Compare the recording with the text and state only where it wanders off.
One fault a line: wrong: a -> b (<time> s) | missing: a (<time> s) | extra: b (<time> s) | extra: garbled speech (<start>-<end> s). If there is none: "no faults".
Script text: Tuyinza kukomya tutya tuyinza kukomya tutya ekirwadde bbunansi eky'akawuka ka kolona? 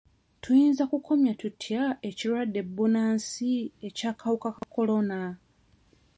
missing: tuyinza kukomya tutya (1.8 s)